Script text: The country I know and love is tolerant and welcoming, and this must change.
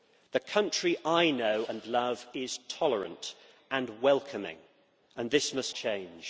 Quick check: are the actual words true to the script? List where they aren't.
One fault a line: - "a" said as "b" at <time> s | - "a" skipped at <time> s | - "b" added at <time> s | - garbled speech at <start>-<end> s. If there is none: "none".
none